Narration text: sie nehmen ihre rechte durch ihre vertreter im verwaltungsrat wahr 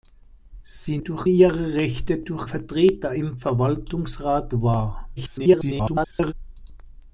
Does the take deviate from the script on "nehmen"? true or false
true